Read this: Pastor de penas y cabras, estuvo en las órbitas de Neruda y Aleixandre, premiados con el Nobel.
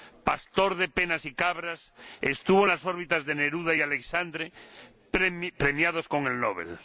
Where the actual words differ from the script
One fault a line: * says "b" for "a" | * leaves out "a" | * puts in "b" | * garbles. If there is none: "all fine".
all fine